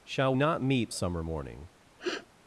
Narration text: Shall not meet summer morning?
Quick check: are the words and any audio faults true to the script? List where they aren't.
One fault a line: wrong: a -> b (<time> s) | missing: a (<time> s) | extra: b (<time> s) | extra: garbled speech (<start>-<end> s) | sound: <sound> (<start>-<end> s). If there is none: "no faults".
sound: sniff (2.0-2.3 s)